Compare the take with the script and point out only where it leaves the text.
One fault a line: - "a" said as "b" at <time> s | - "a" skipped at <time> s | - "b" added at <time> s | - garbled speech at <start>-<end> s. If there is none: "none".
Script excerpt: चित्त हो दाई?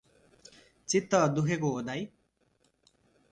- "दुखेको" added at 1.4 s